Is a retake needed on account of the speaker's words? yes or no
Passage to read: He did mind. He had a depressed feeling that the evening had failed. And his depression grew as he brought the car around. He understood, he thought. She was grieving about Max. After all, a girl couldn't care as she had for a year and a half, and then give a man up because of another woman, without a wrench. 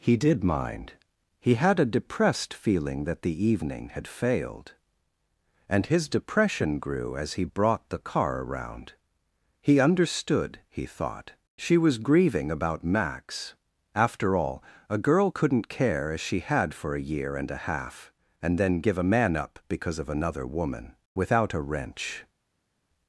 no